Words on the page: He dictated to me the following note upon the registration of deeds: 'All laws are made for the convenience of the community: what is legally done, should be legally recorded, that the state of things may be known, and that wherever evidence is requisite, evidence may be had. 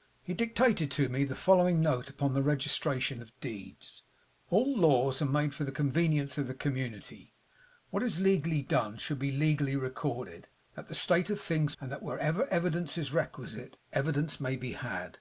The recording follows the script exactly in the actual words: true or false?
false